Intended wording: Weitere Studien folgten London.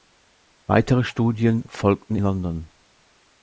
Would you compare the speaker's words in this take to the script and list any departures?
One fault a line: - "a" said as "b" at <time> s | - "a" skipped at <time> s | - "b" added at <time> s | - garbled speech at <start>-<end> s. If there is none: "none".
none